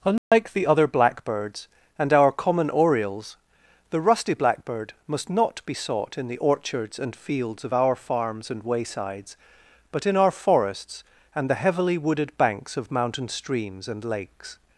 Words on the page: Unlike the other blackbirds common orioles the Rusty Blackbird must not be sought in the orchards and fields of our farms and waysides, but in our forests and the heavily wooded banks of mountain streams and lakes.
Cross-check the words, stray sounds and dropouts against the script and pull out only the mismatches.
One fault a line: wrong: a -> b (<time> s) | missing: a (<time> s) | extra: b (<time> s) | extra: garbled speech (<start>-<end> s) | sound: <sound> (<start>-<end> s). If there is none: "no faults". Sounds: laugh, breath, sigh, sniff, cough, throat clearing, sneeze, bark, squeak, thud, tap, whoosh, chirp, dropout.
sound: dropout (0.2-0.3 s)
extra: and our (2.0 s)